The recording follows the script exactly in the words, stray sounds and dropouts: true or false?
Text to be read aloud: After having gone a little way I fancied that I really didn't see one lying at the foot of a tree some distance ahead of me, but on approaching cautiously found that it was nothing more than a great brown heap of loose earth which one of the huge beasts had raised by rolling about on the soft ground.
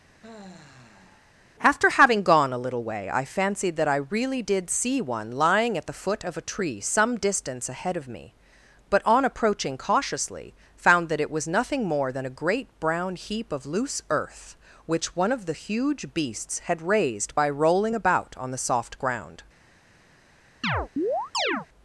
false